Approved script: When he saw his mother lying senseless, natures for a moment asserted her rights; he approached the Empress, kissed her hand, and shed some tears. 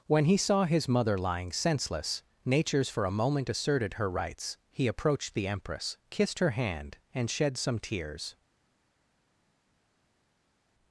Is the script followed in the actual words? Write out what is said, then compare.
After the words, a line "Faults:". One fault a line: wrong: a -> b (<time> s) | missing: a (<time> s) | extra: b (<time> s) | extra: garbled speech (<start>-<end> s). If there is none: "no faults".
When he saw his mother lying senseless, natures for a moment asserted her rights; he approached the Empress, kissed her hand, and shed some tears.
Faults:
no faults